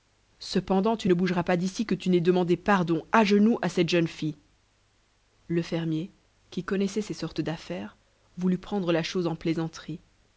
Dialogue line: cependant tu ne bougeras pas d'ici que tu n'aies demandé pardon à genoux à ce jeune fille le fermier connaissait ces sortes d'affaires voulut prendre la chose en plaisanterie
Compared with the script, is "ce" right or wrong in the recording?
wrong